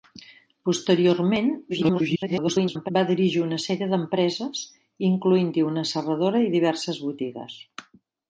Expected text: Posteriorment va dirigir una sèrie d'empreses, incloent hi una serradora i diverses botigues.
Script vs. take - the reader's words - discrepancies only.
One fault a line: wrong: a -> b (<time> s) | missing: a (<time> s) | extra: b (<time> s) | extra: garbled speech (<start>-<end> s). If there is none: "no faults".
extra: garbled speech (1.7-2.9 s)